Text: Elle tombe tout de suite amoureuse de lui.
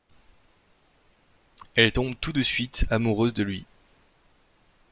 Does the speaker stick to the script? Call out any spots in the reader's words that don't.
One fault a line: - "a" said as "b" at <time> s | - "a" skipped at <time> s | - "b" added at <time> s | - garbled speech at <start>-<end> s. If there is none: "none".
none